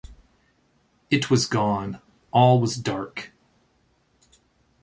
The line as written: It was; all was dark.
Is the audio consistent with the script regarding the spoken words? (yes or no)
no